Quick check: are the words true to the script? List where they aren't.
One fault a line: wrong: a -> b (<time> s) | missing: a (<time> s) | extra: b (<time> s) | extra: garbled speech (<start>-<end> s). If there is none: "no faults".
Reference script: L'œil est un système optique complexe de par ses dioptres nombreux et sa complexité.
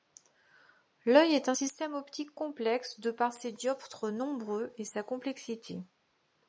no faults